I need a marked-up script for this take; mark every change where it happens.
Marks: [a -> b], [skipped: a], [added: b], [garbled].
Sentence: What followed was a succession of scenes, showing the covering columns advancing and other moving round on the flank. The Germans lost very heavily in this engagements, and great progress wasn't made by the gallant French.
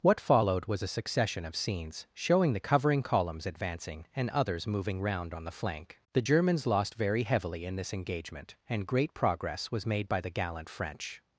What followed was a succession of scenes, showing the covering columns advancing and [other -> others] moving round on the flank. The Germans lost very heavily in this [engagements, -> engagement] and great progress [wasn't -> was] made by the gallant French.